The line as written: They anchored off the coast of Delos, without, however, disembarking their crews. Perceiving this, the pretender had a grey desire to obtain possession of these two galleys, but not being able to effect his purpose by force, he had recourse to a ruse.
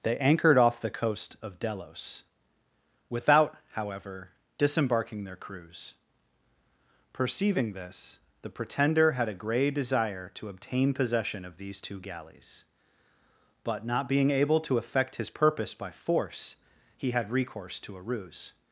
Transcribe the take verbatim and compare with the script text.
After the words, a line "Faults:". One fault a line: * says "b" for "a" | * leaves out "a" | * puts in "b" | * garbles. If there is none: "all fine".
They anchored off the coast of Delos, without, however, disembarking their crews. Perceiving this, the pretender had a grey desire to obtain possession of these two galleys, but not being able to effect his purpose by force, he had recourse to a ruse.
Faults:
all fine